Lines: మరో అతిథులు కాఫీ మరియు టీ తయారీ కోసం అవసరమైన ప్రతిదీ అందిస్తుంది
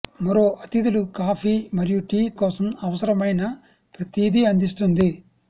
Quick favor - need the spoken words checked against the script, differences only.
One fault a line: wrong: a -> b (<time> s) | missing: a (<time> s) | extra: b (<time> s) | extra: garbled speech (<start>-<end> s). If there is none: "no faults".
missing: తయారీ (2.2 s)